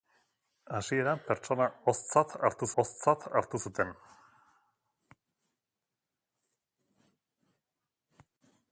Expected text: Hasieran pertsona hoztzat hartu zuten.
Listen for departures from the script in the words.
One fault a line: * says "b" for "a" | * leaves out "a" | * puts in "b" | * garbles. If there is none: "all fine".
* puts in "hoztzat hartu"